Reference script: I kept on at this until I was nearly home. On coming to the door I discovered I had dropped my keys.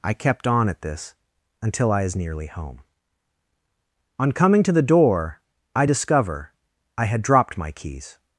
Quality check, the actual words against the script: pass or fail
fail